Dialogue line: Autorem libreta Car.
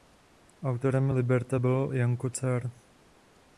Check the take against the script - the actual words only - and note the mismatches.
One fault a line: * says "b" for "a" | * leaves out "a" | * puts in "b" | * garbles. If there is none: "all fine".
* puts in "byl Janko"